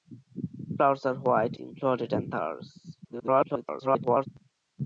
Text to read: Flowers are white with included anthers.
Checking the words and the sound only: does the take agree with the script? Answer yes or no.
no